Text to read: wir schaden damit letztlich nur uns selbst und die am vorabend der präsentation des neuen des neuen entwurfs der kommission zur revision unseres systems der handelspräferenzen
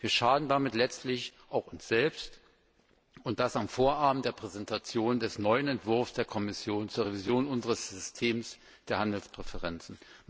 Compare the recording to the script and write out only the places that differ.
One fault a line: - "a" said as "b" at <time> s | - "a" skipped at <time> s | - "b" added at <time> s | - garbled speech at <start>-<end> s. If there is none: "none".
- "nur" said as "auch" at 1.5 s
- "die" said as "das" at 3.4 s
- "des neuen" skipped at 5.7 s